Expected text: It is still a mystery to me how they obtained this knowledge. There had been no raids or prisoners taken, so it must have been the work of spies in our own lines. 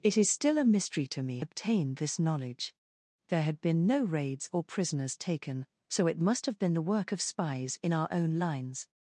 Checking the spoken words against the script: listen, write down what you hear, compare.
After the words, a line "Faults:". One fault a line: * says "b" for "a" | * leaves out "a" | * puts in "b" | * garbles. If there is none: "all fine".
It is still a mystery to me obtained this knowledge. There had been no raids or prisoners taken, so it must have been the work of spies in our own lines.
Faults:
* leaves out "how they"